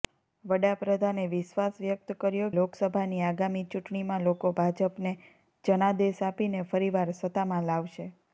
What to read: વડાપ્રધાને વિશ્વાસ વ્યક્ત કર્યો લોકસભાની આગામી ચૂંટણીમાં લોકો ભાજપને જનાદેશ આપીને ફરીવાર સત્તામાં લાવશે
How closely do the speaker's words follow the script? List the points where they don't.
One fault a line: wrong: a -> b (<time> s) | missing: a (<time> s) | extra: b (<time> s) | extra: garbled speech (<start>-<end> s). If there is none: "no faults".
no faults